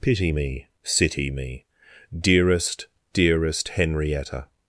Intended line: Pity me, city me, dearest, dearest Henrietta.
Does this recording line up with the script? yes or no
yes